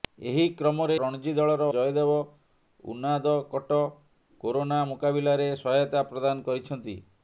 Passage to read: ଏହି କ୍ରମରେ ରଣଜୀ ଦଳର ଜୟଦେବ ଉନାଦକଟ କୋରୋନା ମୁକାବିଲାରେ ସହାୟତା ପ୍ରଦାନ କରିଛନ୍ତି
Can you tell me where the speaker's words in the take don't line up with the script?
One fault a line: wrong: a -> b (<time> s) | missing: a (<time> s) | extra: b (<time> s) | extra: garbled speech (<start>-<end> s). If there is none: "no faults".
no faults